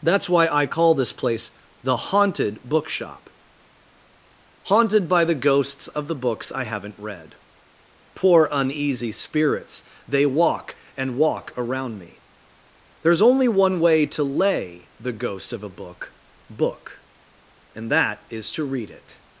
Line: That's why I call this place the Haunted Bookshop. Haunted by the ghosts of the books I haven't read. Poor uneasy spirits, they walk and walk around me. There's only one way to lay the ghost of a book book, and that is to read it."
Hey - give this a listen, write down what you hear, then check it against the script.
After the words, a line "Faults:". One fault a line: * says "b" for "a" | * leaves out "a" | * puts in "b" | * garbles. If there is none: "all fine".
That's why I call this place the Haunted Bookshop. Haunted by the ghosts of the books I haven't read. Poor uneasy spirits, they walk and walk around me. There's only one way to lay the ghost of a book book, and that is to read it."
Faults:
all fine